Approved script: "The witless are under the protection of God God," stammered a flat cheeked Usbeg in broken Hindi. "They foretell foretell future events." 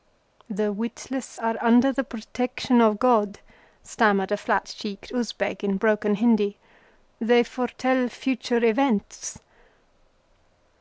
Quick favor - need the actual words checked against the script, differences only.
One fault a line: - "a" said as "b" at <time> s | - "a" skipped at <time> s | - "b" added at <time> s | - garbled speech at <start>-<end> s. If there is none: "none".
- "God" skipped at 3.4 s
- "foretell" skipped at 8.1 s